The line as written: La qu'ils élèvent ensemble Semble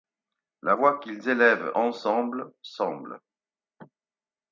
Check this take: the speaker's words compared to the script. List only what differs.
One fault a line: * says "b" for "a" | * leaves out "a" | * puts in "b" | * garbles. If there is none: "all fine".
* puts in "voix"